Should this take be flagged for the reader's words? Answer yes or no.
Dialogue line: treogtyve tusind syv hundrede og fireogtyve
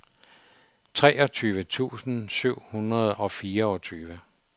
no